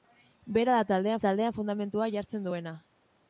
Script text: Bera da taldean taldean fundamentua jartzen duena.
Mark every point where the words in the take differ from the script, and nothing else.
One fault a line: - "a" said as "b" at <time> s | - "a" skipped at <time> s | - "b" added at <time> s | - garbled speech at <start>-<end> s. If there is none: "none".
none